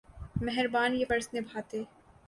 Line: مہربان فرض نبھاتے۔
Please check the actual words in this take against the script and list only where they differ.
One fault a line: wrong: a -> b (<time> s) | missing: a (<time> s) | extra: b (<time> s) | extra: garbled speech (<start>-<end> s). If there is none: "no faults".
extra: یہ (0.9 s)